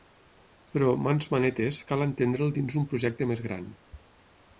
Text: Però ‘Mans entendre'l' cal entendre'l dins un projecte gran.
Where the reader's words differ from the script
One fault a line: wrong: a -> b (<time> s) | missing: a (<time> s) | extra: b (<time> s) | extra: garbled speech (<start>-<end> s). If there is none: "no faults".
wrong: entendre'l -> manetes (1.3 s)
extra: més (3.3 s)